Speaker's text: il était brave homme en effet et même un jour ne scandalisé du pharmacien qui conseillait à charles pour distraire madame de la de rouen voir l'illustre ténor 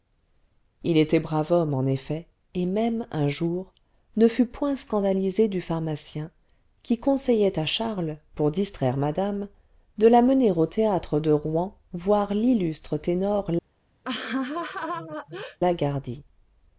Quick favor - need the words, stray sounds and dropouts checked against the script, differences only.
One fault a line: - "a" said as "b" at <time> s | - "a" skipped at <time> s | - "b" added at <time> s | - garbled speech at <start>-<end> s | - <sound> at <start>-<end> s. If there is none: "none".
- "fut point" added at 4.3 s
- "mener au théâtre" added at 10.2 s
- laugh at 14.0-15.6 s